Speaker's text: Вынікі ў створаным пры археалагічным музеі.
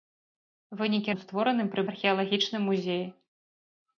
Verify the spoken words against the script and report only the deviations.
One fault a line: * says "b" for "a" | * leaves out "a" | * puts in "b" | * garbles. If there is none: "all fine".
all fine